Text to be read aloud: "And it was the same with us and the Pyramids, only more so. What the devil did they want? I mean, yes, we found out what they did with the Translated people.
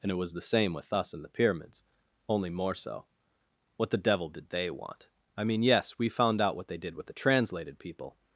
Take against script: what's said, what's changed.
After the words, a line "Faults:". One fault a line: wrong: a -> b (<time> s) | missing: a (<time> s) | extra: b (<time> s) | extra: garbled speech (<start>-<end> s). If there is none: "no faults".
"And it was the same with us and the Pyramids, only more so. What the devil did they want? I mean, yes, we found out what they did with the Translated people.
Faults:
no faults